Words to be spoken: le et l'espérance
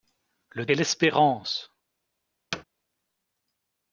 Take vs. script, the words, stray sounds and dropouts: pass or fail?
fail